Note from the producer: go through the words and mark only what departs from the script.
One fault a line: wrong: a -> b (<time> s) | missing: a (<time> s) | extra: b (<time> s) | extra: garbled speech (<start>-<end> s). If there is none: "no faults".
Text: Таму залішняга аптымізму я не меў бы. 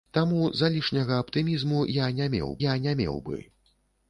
extra: я не меў (2.7 s)